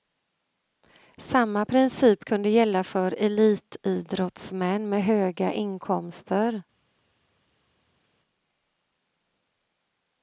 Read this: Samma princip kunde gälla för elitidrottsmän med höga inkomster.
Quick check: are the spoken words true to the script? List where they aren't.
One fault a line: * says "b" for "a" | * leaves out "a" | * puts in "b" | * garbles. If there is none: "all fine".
all fine